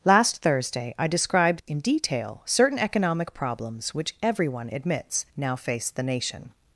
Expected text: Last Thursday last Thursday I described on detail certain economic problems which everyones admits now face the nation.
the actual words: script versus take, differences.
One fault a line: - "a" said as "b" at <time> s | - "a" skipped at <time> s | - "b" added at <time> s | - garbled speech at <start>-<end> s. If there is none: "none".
- "last Thursday" skipped at 0.9 s
- "on" said as "in" at 1.7 s
- "everyones" said as "everyone" at 4.2 s